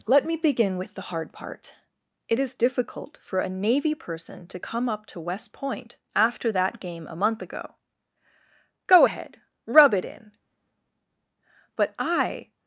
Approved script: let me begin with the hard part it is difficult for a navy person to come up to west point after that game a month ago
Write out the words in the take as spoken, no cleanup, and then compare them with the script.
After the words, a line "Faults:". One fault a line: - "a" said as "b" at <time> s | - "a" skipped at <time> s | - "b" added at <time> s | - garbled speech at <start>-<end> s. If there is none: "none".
let me begin with the hard part it is difficult for a navy person to come up to west point after that game a month ago go ahead rub it in but i
Faults:
- "go ahead rub it in but i" added at 8.9 s